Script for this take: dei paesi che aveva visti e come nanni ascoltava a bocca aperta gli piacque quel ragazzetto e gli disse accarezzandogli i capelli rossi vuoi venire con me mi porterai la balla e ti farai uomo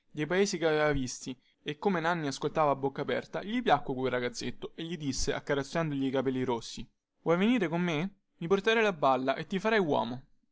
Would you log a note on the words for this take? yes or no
no